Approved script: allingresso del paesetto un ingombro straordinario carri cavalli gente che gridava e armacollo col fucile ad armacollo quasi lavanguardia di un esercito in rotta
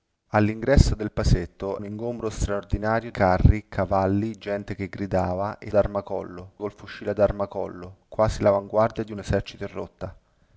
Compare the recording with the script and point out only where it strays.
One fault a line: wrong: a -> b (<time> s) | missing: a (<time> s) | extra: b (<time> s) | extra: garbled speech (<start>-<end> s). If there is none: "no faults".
no faults